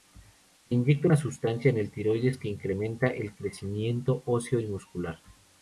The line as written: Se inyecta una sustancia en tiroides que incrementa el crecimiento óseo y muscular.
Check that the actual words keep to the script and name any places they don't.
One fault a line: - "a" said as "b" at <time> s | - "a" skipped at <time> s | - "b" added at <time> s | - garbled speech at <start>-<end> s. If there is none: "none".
- "el" added at 1.8 s